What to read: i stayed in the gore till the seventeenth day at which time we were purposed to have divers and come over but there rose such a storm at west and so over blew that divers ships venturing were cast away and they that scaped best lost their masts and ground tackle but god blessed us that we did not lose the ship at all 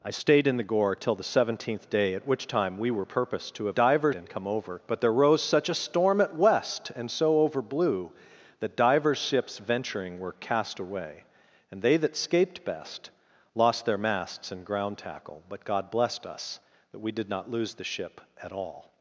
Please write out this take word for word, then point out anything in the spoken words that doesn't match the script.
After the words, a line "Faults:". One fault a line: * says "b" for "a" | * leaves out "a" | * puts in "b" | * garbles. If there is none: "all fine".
i stayed in the gore till the seventeenth day at which time we were purposed to have divers and come over but there rose such a storm at west and so over blew that divers ships venturing were cast away and they that scaped best lost their masts and ground tackle but god blessed us that we did not lose the ship at all
Faults:
all fine